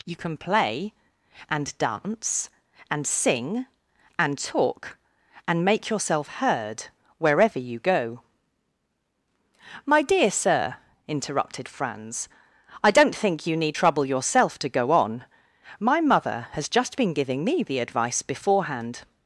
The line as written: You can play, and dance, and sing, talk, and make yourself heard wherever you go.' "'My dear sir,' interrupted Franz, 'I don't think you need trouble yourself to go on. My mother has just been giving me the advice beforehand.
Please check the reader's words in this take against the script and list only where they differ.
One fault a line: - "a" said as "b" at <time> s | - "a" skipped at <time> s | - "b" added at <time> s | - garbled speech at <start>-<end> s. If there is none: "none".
- "and" added at 4.2 s